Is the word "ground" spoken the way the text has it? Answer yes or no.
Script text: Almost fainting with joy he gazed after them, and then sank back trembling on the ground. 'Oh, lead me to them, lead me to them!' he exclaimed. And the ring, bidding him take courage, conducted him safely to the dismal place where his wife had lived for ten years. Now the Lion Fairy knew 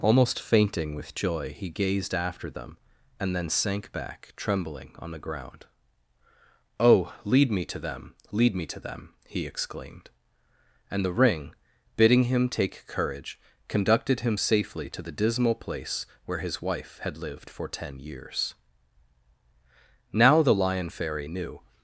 yes